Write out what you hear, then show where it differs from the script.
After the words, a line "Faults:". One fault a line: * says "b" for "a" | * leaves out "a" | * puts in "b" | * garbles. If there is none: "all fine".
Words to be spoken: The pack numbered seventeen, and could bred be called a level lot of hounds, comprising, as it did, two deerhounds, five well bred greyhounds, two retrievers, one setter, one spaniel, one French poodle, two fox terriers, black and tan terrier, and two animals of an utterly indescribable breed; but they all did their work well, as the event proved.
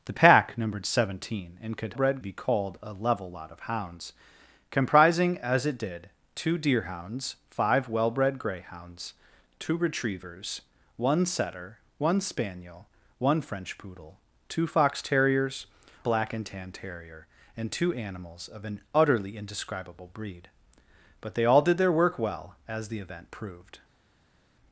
The pack numbered seventeen, and could bred be called a level lot of hounds, comprising, as it did, two deerhounds, five well bred greyhounds, two retrievers, one setter, one spaniel, one French poodle, two fox terriers, black and tan terrier, and two animals of an utterly indescribable breed; but they all did their work well, as the event proved.
Faults:
all fine